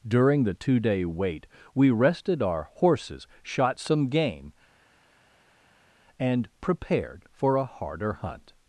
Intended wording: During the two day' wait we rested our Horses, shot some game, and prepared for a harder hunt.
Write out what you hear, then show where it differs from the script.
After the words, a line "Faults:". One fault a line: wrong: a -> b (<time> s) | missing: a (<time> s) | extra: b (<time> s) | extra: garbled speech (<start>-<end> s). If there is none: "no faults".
During the two day' wait we rested our Horses, shot some game, and prepared for a harder hunt.
Faults:
no faults